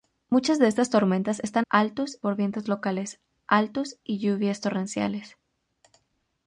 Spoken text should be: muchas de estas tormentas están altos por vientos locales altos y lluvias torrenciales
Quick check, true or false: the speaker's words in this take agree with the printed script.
true